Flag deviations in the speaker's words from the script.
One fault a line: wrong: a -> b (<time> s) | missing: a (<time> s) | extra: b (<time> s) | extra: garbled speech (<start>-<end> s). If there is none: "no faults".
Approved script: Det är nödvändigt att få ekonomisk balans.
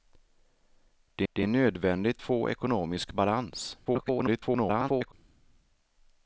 extra: det (1.3 s)
missing: att (2.2 s)
extra: garbled speech (3.9-5.1 s)